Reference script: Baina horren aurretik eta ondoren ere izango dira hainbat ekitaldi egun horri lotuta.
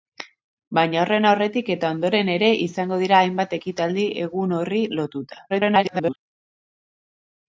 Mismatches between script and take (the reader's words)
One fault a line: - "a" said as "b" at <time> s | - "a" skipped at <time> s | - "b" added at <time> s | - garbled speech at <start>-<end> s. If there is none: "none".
- garbled speech at 5.5-6.2 s